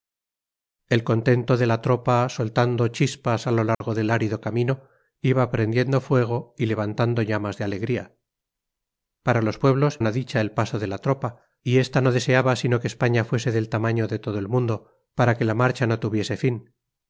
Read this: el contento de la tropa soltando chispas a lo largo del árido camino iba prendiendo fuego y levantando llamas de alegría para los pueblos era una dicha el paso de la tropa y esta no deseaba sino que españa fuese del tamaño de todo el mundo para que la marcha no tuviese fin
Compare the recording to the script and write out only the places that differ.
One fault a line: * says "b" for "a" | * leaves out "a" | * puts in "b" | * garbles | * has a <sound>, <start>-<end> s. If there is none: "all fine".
* has a dropout, 3.7-3.8 s
* leaves out "era"